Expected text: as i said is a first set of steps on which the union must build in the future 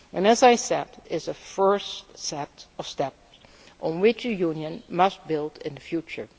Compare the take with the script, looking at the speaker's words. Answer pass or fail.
pass